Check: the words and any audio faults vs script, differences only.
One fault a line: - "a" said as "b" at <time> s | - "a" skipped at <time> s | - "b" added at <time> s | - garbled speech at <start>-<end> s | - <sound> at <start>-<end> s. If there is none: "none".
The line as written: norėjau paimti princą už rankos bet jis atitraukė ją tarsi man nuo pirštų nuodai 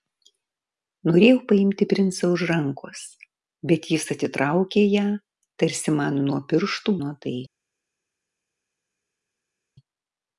none